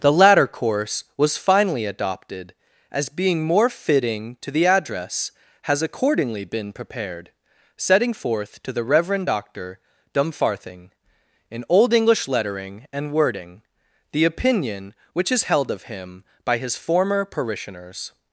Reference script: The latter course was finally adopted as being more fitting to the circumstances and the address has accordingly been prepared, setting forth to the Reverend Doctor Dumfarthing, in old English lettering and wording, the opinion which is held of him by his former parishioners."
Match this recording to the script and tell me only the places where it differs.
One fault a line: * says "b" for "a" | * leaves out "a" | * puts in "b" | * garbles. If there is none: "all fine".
* leaves out "circumstances and the"